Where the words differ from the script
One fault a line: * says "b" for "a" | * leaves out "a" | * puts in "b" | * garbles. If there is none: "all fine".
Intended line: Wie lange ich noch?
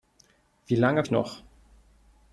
all fine